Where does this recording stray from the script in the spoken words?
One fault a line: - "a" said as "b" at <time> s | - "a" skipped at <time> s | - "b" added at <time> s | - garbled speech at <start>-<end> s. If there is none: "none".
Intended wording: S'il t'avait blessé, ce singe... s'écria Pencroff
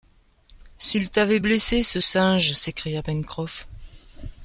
none